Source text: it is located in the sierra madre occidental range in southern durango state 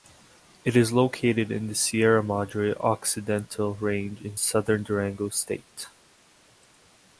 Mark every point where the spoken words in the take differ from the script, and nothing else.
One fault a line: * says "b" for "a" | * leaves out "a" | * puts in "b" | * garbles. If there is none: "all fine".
all fine